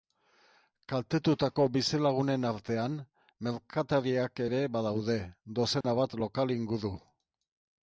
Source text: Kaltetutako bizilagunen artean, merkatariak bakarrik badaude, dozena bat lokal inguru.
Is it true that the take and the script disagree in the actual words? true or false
true